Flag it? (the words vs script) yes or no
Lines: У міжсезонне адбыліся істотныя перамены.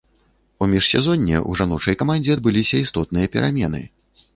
yes